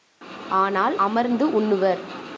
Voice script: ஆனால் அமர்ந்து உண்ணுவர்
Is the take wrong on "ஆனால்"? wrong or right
right